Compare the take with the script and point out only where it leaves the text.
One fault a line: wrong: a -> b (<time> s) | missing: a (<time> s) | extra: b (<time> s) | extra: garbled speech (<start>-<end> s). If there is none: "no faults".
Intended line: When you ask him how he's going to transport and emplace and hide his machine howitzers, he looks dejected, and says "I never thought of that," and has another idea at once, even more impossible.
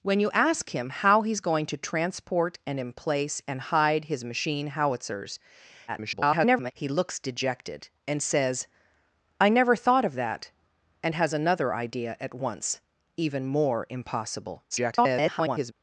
extra: garbled speech (5.9-6.7 s)
extra: garbled speech (14.7-15.7 s)